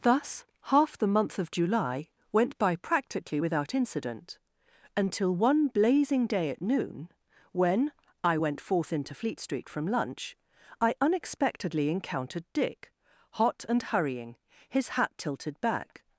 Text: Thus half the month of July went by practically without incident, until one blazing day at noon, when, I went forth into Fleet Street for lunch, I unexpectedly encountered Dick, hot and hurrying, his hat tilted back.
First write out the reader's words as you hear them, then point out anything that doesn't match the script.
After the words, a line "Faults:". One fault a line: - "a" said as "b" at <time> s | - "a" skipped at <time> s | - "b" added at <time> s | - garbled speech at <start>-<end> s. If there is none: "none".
Thus half the month of July went by practically without incident, until one blazing day at noon, when, I went forth into Fleet Street from lunch, I unexpectedly encountered Dick, hot and hurrying, his hat tilted back.
Faults:
- "for" said as "from" at 9.7 s